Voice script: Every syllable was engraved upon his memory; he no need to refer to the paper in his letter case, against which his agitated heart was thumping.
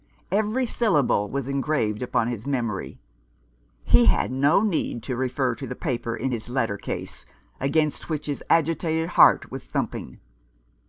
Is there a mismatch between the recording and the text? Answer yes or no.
yes